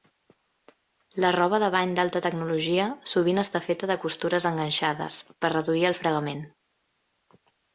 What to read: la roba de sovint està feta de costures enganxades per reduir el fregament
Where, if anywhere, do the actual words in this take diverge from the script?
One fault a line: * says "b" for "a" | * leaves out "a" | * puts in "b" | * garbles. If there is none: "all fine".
* puts in "bany d'alta tecnologia"